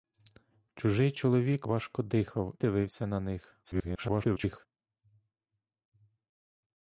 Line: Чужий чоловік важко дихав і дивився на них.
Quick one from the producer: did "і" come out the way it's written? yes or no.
no